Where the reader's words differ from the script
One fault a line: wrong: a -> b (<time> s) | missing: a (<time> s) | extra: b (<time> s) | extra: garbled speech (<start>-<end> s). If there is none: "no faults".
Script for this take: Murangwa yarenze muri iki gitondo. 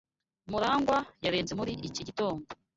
no faults